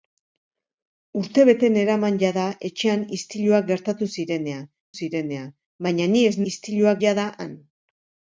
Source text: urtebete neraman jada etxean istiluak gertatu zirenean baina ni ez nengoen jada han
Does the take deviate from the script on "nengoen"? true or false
true